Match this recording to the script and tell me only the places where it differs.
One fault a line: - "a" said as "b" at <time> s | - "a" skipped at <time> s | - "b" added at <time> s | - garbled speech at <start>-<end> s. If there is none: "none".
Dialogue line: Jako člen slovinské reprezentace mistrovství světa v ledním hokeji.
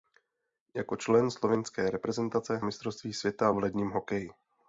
none